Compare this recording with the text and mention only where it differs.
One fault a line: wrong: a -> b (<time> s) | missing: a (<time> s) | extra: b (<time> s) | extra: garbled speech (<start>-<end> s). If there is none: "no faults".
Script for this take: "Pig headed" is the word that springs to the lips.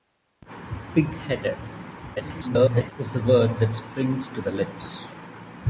extra: garbled speech (2.2-2.9 s)